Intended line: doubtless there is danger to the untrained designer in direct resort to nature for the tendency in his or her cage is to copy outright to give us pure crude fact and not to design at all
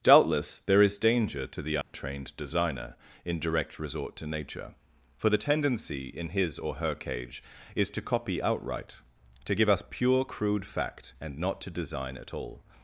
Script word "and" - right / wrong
right